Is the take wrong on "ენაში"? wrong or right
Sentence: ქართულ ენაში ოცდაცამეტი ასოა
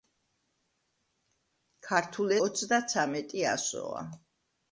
wrong